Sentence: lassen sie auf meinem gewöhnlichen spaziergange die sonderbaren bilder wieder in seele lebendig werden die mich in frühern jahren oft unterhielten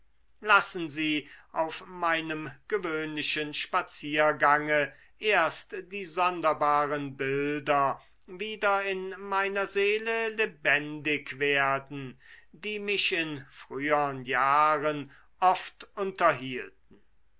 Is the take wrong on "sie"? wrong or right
right